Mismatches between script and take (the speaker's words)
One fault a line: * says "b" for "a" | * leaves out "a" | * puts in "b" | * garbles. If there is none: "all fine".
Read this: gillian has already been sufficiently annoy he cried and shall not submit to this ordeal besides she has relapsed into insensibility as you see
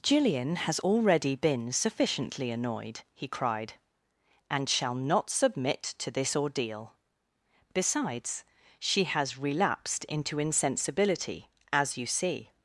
* says "annoyed" for "annoy"